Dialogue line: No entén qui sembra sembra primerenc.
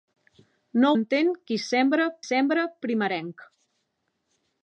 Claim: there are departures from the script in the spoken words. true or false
false